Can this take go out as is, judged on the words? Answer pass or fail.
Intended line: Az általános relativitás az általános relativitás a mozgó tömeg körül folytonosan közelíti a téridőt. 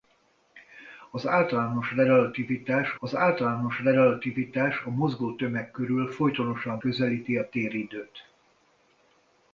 pass